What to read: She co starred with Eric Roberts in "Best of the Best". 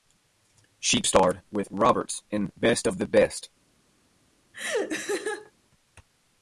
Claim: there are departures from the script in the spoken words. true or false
true